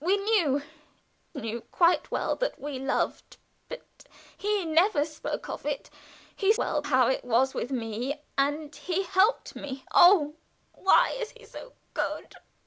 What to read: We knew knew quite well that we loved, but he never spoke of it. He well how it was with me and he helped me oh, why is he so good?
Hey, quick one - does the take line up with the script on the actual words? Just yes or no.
yes